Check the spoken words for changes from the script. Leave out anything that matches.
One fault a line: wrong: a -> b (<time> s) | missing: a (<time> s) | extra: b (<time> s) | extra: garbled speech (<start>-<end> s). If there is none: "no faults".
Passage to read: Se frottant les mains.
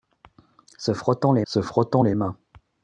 extra: se frottant les (1.5 s)